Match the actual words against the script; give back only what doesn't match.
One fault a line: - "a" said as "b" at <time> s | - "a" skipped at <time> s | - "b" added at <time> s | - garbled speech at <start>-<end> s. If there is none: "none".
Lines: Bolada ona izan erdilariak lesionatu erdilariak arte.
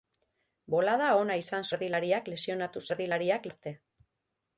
none